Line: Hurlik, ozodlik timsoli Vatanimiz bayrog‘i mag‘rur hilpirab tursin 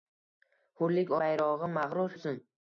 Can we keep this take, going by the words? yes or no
no